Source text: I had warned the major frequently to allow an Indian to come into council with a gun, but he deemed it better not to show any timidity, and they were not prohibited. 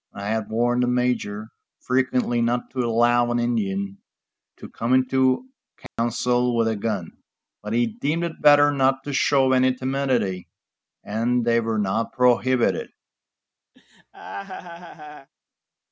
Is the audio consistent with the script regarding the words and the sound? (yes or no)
no